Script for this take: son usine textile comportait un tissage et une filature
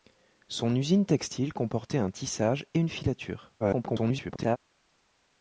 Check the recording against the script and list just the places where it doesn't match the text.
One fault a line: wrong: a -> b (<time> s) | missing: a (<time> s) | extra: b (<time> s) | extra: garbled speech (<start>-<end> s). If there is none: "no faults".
extra: garbled speech (3.6-4.6 s)